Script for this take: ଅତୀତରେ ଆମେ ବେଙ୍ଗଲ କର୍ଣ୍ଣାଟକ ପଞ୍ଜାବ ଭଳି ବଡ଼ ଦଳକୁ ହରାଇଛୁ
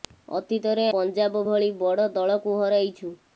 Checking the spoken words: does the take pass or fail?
fail